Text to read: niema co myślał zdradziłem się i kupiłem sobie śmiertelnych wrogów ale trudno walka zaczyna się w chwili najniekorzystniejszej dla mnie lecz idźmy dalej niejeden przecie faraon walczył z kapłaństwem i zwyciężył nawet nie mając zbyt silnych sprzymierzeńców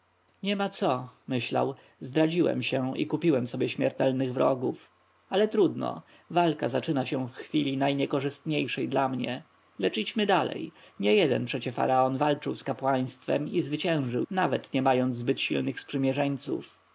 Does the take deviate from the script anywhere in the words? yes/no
no